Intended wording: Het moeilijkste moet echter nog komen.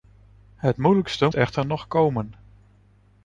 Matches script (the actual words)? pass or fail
fail